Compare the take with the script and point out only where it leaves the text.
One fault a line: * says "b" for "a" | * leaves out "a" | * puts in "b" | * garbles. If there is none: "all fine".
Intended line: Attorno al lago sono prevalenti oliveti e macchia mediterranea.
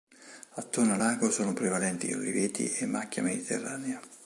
all fine